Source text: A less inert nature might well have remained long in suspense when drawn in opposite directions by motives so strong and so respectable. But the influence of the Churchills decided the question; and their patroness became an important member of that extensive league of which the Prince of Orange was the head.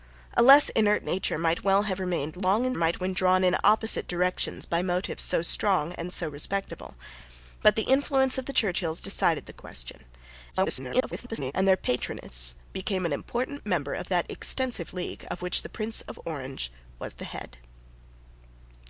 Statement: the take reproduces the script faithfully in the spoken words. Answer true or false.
false